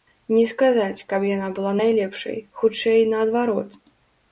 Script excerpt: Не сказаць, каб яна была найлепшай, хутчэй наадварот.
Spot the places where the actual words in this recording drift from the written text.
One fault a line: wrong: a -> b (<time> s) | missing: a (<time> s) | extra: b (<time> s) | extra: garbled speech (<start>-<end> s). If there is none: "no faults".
no faults